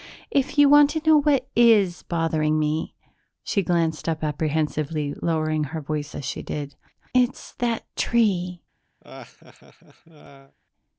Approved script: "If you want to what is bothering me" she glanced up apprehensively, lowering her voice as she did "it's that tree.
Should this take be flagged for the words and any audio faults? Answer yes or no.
yes